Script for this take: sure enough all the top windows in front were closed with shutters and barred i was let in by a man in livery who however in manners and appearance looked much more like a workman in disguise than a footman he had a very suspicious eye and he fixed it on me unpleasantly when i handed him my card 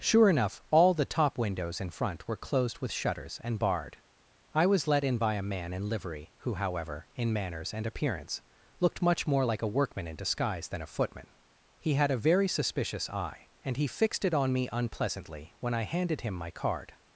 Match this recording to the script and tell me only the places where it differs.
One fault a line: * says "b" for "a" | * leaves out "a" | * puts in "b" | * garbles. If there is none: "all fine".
all fine